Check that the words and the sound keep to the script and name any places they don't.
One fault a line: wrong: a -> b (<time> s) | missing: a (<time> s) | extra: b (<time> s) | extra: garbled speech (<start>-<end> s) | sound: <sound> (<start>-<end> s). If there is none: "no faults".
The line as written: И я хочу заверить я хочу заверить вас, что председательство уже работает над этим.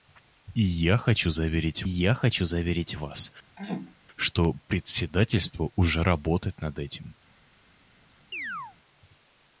sound: throat clearing (3.6-3.9 s)
sound: chirp (8.3-8.8 s)